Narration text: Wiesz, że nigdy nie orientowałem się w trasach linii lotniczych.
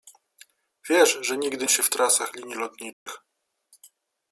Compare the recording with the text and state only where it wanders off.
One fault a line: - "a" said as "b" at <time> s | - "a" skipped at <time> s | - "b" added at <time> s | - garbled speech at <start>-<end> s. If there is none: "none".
- "nie orientowałem" skipped at 1.7 s